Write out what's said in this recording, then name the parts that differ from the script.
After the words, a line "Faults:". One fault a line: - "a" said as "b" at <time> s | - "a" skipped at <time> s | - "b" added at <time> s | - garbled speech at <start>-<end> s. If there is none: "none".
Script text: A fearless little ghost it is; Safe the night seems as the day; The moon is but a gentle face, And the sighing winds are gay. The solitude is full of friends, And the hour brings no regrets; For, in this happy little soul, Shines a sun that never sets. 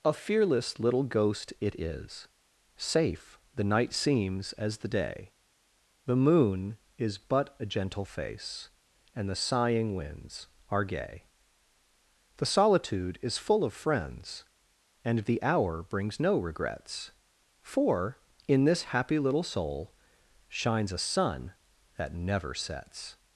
A fearless little ghost it is; Safe the night seems as the day; The moon is but a gentle face, And the sighing winds are gay. The solitude is full of friends, And the hour brings no regrets; For, in this happy little soul, Shines a sun that never sets.
Faults:
none